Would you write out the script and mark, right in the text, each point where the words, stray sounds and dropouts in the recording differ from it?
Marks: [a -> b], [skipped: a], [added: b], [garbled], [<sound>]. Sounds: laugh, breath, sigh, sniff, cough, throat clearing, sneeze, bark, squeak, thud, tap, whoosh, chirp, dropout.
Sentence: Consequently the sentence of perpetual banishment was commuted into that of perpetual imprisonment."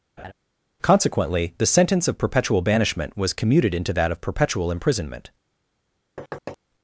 [laugh] Consequently the sentence of perpetual banishment was commuted into that of perpetual imprisonment." [thud]